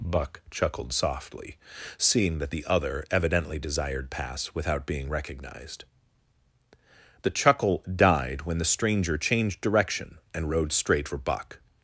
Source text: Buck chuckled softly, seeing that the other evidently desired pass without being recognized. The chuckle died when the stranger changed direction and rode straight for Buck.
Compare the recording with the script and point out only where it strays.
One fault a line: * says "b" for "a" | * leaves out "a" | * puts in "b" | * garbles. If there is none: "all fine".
all fine